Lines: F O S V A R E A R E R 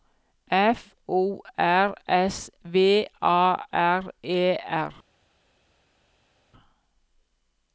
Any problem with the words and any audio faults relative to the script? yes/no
yes